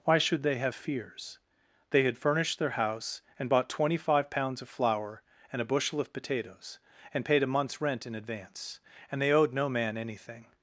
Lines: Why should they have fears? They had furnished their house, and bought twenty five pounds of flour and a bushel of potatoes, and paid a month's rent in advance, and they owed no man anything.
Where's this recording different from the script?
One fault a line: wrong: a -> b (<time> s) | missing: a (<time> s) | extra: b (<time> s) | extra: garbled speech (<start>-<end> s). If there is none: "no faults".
no faults